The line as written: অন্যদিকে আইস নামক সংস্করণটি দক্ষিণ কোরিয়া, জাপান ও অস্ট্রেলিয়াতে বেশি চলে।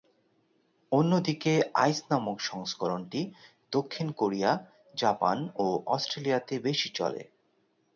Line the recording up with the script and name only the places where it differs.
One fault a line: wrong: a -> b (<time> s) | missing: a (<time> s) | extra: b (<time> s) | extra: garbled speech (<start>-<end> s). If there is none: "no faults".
no faults